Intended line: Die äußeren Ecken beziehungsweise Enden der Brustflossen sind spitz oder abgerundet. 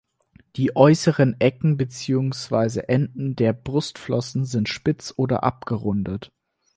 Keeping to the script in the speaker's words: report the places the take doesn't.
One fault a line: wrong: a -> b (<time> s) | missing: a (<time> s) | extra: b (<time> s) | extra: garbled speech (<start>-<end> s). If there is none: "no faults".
no faults